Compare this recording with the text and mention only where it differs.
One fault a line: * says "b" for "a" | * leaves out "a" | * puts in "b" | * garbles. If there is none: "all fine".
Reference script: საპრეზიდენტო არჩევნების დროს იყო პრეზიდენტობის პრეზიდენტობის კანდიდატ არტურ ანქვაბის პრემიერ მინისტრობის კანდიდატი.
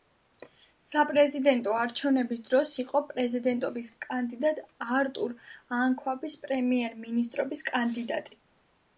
* leaves out "პრეზიდენტობის"